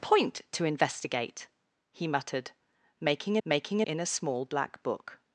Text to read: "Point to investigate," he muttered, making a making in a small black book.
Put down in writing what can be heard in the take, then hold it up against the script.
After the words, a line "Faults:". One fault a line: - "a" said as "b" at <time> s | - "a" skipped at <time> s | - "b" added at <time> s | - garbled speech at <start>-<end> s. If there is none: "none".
"Point to investigate," he muttered, making a making in a small black book.
Faults:
none